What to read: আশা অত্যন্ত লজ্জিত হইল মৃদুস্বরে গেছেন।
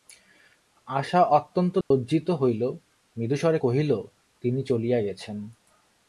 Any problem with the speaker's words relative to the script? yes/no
yes